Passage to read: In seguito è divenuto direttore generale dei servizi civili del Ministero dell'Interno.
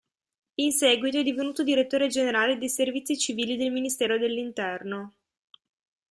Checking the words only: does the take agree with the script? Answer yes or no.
yes